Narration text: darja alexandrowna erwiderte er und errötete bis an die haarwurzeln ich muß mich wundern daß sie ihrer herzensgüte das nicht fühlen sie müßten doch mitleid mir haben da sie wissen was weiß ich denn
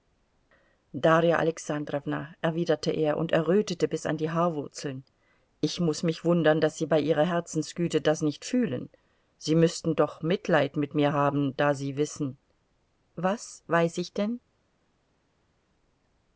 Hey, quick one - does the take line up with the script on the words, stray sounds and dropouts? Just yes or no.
no